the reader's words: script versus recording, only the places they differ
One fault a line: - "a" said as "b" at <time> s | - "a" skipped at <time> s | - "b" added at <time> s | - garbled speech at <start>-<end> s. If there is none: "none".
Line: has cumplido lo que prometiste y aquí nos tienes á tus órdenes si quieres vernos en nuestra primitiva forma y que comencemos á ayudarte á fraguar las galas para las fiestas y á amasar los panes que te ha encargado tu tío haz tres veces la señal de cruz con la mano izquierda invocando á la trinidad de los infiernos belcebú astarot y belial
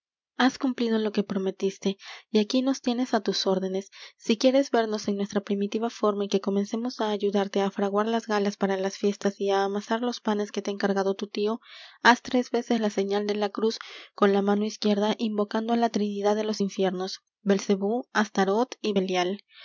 - "la" added at 13.4 s